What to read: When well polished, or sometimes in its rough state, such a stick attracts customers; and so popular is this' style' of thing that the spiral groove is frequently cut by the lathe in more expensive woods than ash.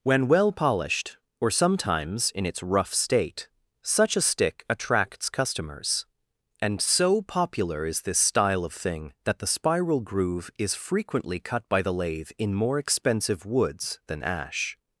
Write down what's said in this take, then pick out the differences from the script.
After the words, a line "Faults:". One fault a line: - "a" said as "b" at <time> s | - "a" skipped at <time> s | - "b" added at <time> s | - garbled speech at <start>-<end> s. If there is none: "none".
When well polished, or sometimes in its rough state, such a stick attracts customers; and so popular is this' style' of thing that the spiral groove is frequently cut by the lathe in more expensive woods than ash.
Faults:
none